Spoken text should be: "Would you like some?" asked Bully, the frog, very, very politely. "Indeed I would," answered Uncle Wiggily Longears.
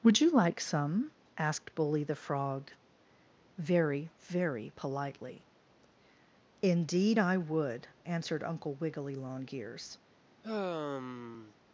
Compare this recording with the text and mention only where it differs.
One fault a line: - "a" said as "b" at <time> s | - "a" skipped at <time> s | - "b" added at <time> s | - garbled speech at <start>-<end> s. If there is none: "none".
none